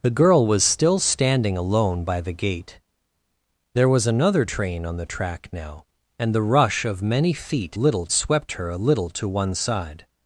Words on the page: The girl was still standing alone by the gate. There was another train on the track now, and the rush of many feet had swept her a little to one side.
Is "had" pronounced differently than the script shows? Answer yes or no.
yes